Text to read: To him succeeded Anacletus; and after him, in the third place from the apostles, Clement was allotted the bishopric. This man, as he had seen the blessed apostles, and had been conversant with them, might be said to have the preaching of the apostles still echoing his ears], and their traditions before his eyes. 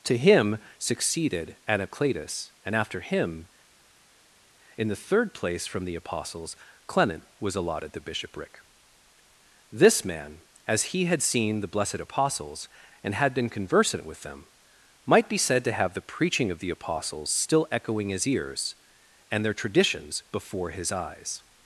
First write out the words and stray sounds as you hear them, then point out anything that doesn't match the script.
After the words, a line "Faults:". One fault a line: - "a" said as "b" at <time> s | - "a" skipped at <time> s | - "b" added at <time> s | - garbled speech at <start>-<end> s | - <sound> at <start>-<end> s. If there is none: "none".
To him succeeded Anacletus; and after him, in the third place from the apostles, Clement was allotted the bishopric. This man, as he had seen the blessed apostles, and had been conversant with them, might be said to have the preaching of the apostles still echoing his ears], and their traditions before his eyes.
Faults:
none